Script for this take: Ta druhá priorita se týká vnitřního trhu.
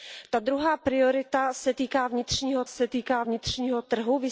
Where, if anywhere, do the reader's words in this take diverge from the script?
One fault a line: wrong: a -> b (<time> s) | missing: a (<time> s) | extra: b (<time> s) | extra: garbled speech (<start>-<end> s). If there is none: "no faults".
extra: se týká vnitřního (2.7 s)